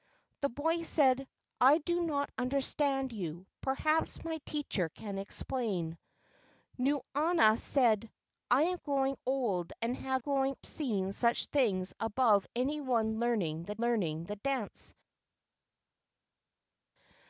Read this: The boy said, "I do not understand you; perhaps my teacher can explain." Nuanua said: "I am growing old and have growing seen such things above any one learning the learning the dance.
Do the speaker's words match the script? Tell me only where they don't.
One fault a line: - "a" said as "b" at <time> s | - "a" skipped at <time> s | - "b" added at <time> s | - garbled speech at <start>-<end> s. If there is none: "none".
none